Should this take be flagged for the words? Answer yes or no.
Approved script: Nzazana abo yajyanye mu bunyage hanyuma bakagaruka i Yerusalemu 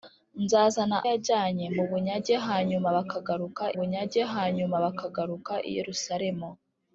yes